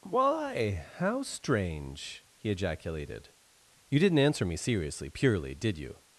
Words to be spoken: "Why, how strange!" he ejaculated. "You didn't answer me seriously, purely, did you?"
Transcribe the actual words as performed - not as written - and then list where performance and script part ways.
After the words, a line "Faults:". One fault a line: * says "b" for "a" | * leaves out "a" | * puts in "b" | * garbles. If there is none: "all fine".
"Why, how strange!" he ejaculated. "You didn't answer me seriously, purely, did you?"
Faults:
all fine